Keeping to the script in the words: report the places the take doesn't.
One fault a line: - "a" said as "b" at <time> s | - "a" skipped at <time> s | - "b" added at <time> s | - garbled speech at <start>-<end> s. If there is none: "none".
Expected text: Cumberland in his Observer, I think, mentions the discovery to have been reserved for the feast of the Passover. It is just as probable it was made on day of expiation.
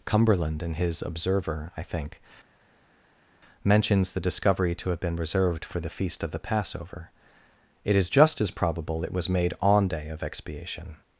none